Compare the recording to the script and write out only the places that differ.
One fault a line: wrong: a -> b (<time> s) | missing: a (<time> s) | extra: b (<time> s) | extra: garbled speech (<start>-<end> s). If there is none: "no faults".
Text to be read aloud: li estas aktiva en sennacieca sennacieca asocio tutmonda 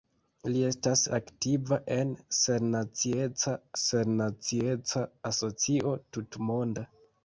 no faults